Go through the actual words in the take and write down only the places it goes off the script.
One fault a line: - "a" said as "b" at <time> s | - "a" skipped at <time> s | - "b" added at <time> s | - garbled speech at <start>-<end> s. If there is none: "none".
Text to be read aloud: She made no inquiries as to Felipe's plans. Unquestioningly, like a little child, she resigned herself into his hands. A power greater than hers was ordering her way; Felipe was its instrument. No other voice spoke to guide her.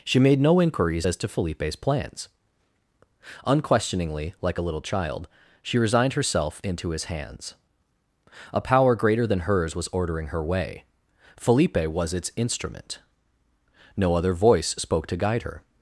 none